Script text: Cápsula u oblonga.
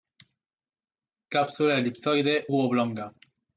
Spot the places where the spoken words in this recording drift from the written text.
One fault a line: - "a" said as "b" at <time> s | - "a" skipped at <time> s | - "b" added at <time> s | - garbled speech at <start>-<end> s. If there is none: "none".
- "elipsoide" added at 1.8 s